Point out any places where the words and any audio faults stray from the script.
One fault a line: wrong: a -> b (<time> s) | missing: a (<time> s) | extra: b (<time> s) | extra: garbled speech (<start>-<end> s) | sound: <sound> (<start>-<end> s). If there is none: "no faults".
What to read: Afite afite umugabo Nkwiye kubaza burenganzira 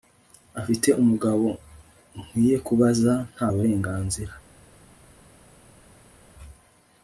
missing: afite (0.9 s)
extra: nta (3.3 s)